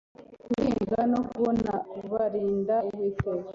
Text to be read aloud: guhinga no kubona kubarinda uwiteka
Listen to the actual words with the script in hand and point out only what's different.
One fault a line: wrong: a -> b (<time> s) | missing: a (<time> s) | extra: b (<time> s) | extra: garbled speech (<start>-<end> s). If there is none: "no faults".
no faults